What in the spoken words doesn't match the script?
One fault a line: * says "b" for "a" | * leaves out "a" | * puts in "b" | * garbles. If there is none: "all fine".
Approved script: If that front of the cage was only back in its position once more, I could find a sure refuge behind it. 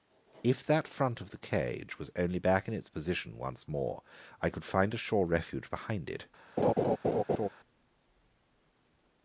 all fine